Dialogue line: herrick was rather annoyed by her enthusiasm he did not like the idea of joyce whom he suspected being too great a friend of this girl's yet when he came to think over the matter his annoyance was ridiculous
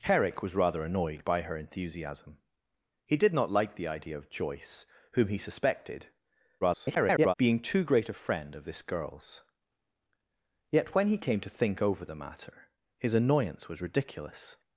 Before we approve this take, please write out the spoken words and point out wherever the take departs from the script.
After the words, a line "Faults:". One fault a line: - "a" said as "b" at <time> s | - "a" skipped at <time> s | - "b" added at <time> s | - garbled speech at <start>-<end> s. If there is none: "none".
herrick was rather annoyed by her enthusiasm he did not like the idea of joyce whom he suspected [garbled] being too great a friend of this girl's yet when he came to think over the matter his annoyance was ridiculous
Faults:
- garbled speech at 6.6-7.3 s